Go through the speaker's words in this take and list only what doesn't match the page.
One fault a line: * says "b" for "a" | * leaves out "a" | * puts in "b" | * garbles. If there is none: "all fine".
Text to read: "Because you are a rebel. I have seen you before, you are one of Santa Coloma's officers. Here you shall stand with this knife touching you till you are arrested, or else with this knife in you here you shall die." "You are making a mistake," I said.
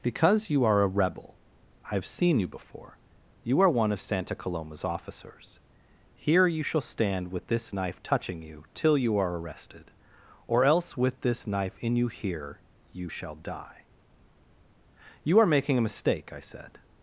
all fine